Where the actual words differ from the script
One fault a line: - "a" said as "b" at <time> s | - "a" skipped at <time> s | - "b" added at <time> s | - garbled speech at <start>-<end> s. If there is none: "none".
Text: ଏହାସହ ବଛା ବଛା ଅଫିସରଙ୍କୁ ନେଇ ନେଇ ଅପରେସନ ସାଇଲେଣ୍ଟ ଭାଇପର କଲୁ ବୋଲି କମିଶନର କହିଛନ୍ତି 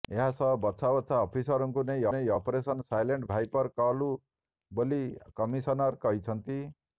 none